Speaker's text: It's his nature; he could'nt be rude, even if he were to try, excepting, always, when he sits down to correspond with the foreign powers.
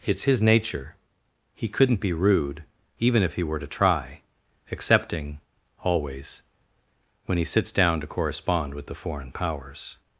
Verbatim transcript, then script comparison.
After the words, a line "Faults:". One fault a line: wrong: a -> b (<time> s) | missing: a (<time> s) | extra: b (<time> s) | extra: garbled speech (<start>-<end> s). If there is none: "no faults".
It's his nature; he could'nt be rude, even if he were to try, excepting, always, when he sits down to correspond with the foreign powers.
Faults:
no faults